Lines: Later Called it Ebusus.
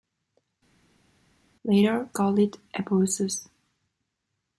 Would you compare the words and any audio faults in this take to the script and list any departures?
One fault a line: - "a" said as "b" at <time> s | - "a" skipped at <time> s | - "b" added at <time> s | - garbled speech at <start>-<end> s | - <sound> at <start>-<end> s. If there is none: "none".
none